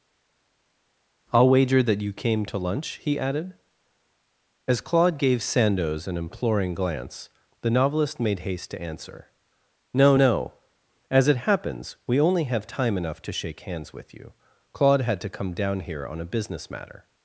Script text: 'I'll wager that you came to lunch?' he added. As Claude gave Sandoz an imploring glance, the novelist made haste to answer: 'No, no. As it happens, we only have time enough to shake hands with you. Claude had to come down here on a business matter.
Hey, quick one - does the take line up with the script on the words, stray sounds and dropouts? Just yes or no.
yes